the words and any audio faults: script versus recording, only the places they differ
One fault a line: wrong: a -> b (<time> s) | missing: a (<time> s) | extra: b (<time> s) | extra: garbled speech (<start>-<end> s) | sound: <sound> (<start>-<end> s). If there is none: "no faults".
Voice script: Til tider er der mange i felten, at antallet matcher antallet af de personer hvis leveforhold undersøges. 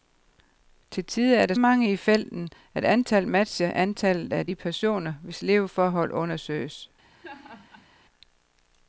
sound: laugh (7.1-7.9 s)